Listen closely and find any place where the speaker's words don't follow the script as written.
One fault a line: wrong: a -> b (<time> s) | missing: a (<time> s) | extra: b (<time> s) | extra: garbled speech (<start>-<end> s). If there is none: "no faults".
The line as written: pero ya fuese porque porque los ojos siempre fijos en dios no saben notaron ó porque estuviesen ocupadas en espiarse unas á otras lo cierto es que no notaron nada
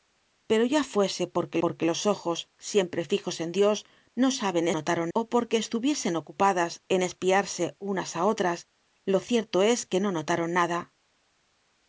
no faults